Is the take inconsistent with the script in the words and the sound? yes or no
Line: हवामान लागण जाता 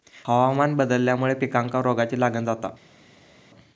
yes